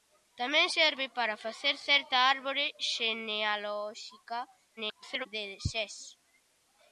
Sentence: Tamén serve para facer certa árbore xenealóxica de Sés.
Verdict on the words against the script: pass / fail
fail